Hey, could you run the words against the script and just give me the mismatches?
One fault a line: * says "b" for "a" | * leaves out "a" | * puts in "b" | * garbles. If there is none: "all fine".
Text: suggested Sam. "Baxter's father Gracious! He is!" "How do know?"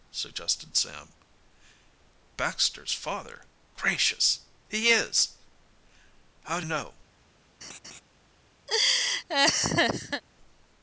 all fine